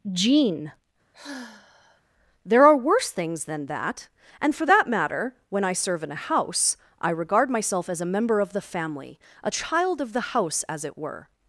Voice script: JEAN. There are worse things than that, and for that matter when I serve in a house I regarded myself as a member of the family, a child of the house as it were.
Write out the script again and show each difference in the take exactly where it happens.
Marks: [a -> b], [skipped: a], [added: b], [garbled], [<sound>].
JEAN. [sigh] There are worse things than that, and for that matter when I serve in a house I [regarded -> regard] myself as a member of the family, a child of the house as it were.